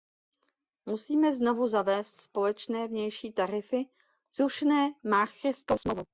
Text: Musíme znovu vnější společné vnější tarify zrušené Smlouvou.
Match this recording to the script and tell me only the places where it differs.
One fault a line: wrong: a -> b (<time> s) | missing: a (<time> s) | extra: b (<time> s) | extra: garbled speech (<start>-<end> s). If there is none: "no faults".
wrong: vnější -> zavést (1.7 s)
extra: Maastrichtskou (5.1 s)